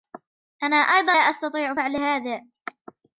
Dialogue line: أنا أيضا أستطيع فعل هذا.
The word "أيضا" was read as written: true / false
true